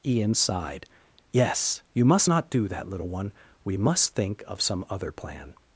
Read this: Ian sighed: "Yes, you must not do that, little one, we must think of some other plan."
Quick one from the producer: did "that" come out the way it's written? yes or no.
yes